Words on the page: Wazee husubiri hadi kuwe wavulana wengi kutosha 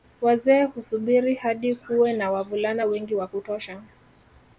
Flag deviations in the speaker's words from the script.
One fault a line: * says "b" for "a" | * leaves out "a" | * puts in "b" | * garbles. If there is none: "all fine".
* puts in "na"
* puts in "wa"